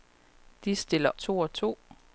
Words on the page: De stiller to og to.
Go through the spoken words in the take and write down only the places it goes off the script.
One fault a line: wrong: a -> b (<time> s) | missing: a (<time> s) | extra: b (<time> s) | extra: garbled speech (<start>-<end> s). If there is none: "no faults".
no faults